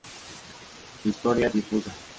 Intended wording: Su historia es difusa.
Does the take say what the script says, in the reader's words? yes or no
yes